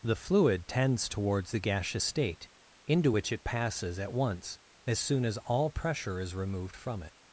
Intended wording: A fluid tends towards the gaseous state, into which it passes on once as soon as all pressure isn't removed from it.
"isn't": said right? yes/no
no